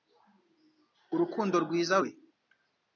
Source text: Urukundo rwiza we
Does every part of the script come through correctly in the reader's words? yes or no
yes